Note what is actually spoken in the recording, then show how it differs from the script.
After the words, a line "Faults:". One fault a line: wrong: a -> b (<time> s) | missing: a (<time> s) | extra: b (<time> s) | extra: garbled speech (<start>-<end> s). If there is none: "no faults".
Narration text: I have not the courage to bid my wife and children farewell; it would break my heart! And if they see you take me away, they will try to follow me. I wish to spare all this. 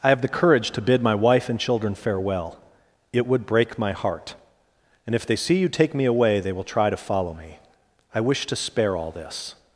I have the courage to bid my wife and children farewell; it would break my heart! And if they see you take me away, they will try to follow me. I wish to spare all this.
Faults:
missing: not (0.2 s)